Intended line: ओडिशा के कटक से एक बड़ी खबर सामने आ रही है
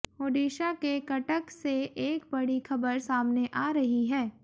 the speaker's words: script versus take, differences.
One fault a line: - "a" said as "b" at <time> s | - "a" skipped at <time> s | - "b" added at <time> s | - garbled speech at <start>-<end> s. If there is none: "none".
none